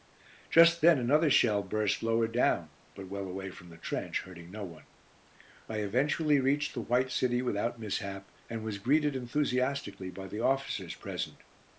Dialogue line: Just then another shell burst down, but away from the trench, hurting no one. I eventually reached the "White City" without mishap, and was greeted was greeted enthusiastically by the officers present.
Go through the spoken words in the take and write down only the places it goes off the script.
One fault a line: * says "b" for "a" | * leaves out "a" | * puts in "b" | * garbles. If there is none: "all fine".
* puts in "lower"
* puts in "well"
* leaves out "was greeted"